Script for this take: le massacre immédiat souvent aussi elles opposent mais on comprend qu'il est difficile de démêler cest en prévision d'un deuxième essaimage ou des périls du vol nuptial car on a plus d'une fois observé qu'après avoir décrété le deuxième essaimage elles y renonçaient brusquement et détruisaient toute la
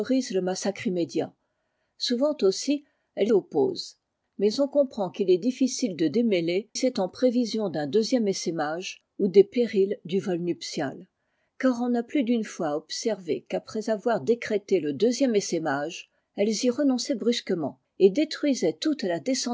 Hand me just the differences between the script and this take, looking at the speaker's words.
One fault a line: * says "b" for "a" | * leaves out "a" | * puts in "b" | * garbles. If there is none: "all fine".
all fine